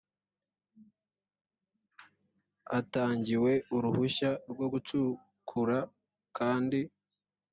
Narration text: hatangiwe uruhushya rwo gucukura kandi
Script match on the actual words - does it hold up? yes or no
yes